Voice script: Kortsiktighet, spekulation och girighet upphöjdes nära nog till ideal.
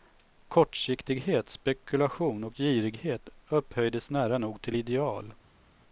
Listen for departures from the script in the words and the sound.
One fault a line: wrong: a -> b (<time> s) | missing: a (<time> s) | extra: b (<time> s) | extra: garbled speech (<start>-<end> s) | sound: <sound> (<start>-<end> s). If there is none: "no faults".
no faults